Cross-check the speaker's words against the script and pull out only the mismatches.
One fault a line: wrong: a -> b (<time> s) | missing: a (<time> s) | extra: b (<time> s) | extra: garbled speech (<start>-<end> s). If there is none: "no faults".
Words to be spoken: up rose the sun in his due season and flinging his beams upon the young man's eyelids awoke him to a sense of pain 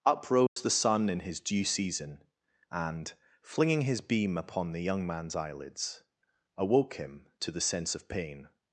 wrong: beams -> beam (4.0 s)
wrong: a -> the (7.5 s)